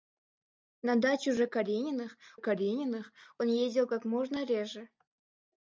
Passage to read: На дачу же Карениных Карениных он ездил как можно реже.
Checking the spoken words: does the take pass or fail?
pass